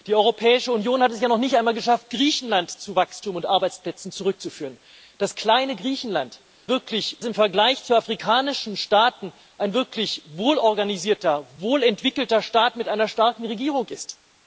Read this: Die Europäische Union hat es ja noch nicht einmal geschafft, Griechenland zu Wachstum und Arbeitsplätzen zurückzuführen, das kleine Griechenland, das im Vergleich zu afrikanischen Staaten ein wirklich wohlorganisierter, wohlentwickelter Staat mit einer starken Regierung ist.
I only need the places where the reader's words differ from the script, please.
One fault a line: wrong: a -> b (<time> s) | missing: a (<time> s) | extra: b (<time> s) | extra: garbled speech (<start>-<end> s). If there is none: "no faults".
wrong: das -> wirklich (6.7 s)